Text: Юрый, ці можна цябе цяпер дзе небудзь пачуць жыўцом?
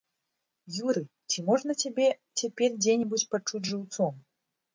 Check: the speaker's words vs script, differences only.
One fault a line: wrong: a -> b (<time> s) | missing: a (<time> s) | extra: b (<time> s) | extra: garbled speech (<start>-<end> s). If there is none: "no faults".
no faults